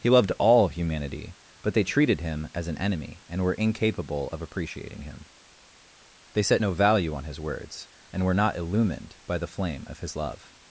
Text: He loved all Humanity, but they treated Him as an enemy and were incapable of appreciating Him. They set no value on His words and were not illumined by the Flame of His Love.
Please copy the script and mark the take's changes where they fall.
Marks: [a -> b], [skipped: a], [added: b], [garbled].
He loved all Humanity, but they treated Him as an enemy and were incapable of appreciating Him. They set no value on His words and were not illumined by the Flame of His Love.